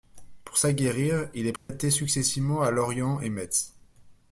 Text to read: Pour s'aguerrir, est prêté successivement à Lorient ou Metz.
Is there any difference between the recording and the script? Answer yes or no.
yes